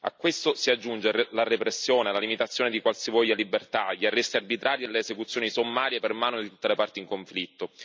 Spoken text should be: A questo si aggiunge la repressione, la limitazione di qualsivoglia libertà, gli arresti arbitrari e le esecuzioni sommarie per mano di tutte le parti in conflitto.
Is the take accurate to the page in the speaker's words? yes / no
yes